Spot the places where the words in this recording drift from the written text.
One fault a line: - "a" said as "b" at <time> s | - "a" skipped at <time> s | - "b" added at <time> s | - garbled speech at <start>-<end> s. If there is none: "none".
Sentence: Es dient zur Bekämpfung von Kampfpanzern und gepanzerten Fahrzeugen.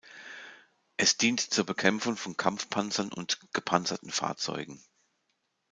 none